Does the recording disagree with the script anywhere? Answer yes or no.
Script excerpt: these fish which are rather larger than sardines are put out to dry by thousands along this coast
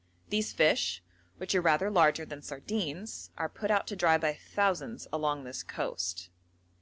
no